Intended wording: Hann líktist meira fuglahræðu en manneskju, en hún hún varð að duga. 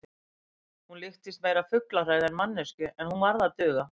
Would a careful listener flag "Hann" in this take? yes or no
yes